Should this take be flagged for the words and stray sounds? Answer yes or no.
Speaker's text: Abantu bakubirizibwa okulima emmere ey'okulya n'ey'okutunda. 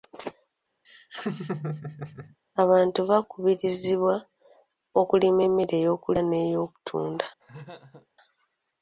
yes